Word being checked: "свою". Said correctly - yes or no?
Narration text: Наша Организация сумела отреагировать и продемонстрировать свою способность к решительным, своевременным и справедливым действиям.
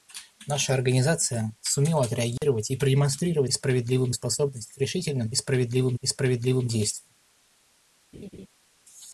no